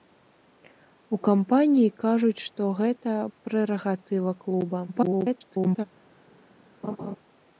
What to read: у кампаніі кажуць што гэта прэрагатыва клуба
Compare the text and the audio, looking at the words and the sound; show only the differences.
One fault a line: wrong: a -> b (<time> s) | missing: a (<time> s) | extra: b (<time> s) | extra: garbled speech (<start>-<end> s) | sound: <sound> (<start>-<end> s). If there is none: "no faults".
extra: garbled speech (4.9-5.9 s)
sound: laugh (6.8-7.2 s)